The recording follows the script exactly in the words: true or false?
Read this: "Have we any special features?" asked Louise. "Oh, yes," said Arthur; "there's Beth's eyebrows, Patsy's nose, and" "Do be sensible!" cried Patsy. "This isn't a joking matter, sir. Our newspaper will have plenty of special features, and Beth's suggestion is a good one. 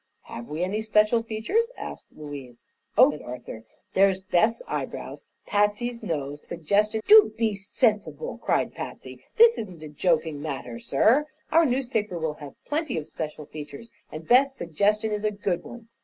false